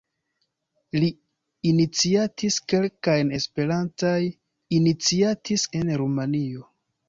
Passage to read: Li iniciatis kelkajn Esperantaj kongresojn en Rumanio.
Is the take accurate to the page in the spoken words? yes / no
no